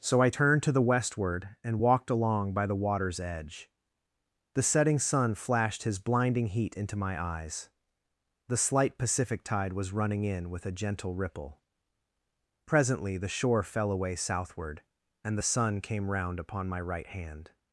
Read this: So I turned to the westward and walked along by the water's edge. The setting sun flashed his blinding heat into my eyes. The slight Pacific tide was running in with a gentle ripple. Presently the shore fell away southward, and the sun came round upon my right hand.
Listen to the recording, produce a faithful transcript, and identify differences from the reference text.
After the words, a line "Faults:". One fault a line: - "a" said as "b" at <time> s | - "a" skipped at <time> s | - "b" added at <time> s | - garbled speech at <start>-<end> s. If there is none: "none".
So I turned to the westward and walked along by the water's edge. The setting sun flashed his blinding heat into my eyes. The slight Pacific tide was running in with a gentle ripple. Presently the shore fell away southward, and the sun came round upon my right hand.
Faults:
none